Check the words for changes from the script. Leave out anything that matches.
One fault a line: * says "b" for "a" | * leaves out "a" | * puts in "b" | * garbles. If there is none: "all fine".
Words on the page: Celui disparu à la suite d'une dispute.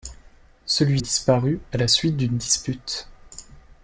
all fine